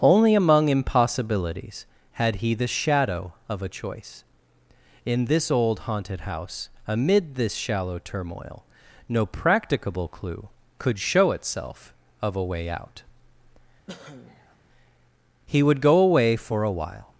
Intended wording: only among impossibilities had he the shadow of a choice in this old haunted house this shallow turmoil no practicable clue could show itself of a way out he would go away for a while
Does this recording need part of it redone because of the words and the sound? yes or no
yes